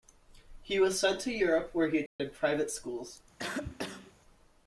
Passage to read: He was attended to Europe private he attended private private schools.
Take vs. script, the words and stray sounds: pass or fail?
fail